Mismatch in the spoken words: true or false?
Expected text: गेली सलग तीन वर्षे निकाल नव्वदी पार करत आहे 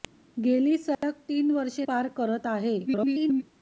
true